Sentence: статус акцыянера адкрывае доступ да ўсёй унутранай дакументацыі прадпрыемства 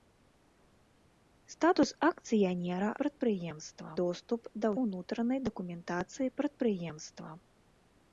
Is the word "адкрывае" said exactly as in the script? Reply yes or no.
no